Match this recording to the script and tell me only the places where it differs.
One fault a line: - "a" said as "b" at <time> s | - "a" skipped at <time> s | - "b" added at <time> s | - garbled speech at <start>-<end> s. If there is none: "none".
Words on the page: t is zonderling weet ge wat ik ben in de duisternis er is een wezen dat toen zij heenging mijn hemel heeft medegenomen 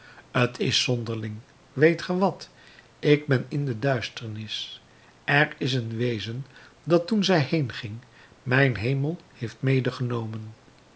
none